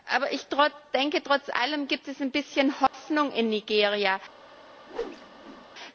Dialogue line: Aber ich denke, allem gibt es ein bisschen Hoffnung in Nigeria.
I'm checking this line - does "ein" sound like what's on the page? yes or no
yes